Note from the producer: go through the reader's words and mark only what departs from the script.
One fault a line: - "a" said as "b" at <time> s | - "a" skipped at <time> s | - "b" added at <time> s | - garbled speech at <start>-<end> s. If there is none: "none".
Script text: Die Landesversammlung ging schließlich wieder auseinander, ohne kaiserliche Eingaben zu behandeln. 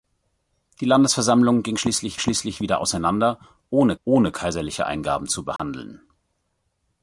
- "schließlich" added at 2.2 s
- "ohne" added at 4.0 s